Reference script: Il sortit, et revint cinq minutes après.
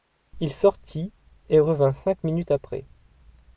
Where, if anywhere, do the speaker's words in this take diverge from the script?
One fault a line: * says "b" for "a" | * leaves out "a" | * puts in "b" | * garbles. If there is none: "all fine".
all fine